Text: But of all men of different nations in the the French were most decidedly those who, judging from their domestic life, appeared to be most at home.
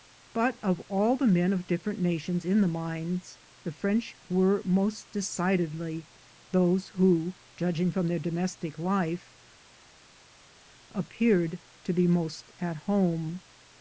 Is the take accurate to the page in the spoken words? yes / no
no